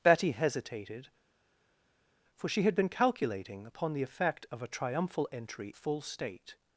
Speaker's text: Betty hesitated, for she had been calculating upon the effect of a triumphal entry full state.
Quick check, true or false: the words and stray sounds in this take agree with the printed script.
true